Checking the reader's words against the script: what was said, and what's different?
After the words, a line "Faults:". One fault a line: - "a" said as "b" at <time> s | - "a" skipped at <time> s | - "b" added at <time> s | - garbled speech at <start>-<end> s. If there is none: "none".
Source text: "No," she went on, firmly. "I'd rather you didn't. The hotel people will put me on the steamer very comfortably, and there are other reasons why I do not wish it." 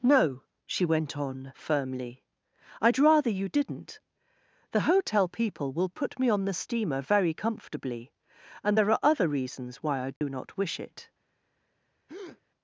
"No," she went on, firmly. "I'd rather you didn't. The hotel people will put me on the steamer very comfortably, and there are other reasons why I do not wish it."
Faults:
none